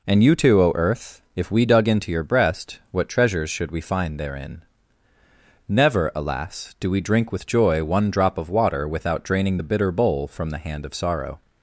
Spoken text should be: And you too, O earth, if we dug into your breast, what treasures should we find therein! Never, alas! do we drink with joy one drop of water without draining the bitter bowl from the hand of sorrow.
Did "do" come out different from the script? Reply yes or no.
no